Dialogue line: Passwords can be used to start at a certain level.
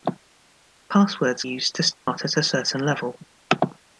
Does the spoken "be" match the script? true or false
false